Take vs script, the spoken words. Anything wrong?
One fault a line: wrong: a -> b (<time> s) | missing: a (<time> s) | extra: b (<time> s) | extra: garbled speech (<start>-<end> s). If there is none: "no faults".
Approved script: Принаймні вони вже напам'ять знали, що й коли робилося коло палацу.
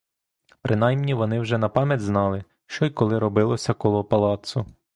no faults